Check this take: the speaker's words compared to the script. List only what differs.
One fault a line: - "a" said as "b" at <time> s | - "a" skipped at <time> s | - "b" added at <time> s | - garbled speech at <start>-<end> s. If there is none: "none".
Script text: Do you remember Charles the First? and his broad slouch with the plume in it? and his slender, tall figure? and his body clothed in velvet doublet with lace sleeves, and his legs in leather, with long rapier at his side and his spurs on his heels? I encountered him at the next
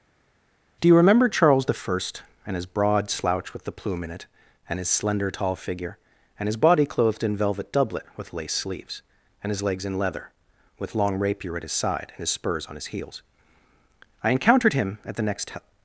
none